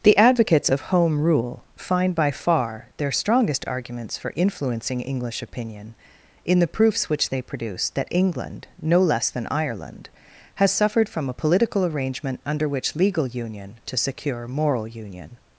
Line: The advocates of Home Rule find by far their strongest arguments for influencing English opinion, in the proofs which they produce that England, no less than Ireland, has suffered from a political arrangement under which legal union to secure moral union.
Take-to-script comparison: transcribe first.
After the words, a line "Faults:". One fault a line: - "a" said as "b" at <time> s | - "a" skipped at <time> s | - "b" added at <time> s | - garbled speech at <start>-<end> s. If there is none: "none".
The advocates of Home Rule find by far their strongest arguments for influencing English opinion, in the proofs which they produce that England, no less than Ireland, has suffered from a political arrangement under which legal union to secure moral union.
Faults:
none